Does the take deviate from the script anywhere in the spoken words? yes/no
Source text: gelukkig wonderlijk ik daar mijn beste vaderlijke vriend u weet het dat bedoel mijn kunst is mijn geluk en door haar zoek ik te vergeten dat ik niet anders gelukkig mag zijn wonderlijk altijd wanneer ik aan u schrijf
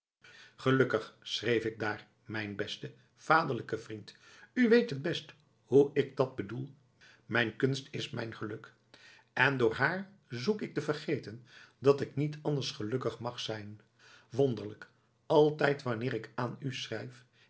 yes